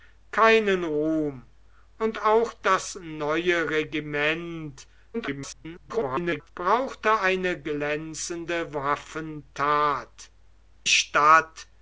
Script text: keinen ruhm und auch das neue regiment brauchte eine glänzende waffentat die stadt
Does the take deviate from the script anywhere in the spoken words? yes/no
yes